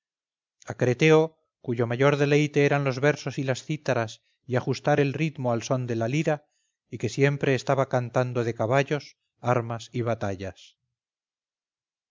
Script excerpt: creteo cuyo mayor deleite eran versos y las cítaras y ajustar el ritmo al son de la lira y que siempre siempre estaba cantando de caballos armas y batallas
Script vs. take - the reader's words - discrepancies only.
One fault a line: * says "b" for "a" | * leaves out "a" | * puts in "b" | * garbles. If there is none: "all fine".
* puts in "los"
* leaves out "siempre"